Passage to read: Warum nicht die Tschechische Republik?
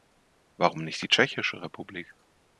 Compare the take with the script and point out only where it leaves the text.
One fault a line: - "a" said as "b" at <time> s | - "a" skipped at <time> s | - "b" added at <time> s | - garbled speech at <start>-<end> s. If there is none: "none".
none